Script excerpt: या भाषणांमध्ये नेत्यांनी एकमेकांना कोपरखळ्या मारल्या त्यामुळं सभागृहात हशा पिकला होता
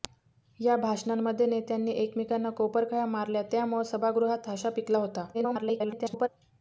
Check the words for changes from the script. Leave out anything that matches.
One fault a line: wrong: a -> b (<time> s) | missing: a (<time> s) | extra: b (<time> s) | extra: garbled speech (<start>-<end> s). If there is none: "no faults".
extra: garbled speech (5.3-6.3 s)